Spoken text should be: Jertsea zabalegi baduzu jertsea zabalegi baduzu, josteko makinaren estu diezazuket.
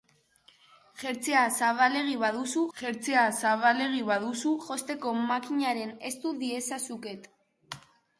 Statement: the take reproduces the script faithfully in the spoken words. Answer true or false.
true